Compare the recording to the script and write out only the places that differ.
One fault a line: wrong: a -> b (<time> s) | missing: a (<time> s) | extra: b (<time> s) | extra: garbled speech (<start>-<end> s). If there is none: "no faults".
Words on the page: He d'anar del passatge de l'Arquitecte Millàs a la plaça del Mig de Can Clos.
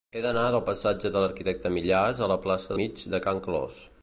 missing: del (2.8 s)